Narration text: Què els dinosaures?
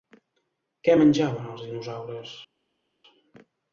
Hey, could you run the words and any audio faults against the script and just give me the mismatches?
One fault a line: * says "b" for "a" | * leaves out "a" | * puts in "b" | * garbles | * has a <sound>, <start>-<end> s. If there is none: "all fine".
* puts in "menjaven"